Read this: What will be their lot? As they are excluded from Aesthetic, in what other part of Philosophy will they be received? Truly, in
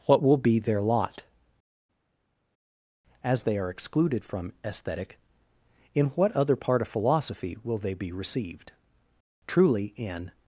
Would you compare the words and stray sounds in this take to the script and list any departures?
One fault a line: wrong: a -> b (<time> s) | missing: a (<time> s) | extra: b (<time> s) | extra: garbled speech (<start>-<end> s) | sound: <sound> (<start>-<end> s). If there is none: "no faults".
no faults